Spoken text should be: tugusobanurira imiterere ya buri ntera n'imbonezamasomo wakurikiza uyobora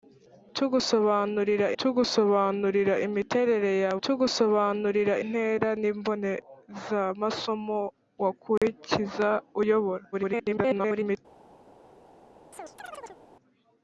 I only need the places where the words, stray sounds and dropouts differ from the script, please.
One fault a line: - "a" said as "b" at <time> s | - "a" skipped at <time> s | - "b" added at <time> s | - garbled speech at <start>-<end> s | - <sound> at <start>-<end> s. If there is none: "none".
- "tugusobanurira" added at 1.8 s
- "buri" said as "tugusobanurira" at 4.0 s
- dropout at 8.6-8.6 s
- garbled speech at 10.1-11.2 s
- chirp at 12.5-13.2 s